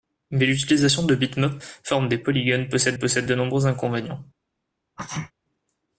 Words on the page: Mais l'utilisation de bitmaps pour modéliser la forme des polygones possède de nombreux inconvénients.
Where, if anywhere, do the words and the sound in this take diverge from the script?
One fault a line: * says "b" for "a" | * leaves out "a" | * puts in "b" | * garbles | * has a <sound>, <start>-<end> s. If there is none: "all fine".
* leaves out "pour modéliser la"
* puts in "possède"
* has a sneeze, 5.0-5.3 s